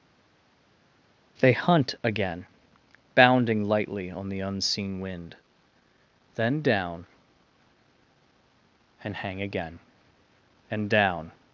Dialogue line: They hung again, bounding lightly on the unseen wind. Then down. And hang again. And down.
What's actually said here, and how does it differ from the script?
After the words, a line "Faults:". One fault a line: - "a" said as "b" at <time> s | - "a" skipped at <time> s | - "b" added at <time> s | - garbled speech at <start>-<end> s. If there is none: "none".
They hunt again, bounding lightly on the unseen wind. Then down. And hang again. And down.
Faults:
- "hung" said as "hunt" at 1.5 s